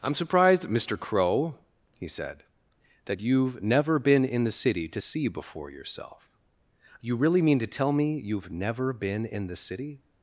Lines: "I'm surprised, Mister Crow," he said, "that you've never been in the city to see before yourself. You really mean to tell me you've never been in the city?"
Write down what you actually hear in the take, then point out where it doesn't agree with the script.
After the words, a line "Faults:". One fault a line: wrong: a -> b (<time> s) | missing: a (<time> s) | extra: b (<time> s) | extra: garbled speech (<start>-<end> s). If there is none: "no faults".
"I'm surprised, Mister Crow," he said, "that you've never been in the city to see before yourself. You really mean to tell me you've never been in the city?"
Faults:
no faults